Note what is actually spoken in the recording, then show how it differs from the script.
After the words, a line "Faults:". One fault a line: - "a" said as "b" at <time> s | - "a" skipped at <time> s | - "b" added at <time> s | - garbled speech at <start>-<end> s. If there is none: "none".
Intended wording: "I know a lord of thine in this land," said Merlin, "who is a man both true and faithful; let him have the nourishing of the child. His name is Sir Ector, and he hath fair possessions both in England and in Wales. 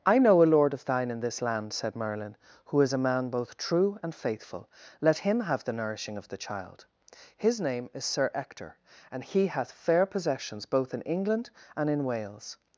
"I know a lord of thine in this land," said Merlin, "who is a man both true and faithful; let him have the nourishing of the child. His name is Sir Ector, and he hath fair possessions both in England and in Wales.
Faults:
none